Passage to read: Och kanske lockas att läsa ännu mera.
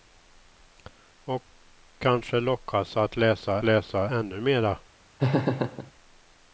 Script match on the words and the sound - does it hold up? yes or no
no